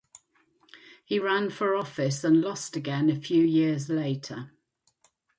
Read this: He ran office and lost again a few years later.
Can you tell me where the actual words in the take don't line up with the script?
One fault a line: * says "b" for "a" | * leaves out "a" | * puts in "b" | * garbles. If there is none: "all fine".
* puts in "for"